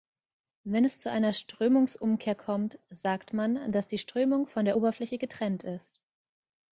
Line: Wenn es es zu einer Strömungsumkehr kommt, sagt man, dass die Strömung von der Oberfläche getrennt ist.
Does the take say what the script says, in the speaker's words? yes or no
no